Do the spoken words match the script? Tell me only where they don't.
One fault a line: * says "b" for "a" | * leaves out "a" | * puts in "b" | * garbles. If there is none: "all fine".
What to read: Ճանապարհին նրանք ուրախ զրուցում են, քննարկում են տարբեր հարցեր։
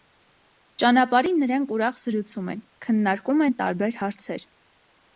all fine